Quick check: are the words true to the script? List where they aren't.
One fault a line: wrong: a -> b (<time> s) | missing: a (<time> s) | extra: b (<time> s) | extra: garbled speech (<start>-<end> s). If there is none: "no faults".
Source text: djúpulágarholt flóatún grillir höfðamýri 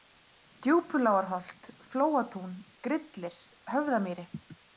no faults